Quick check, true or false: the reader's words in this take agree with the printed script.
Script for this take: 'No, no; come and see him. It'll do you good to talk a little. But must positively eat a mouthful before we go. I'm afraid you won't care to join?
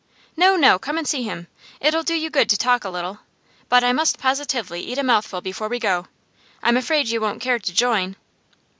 false